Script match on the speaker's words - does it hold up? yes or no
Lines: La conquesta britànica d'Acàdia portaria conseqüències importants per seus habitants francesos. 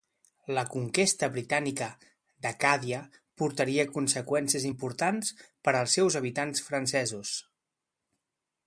no